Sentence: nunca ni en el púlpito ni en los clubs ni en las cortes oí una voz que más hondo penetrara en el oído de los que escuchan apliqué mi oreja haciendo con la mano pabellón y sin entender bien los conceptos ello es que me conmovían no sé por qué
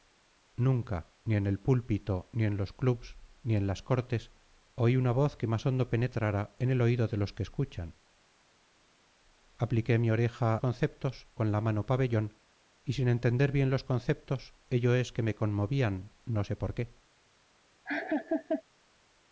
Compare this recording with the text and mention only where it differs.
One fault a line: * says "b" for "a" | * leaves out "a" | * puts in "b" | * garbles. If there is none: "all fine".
* says "conceptos" for "haciendo"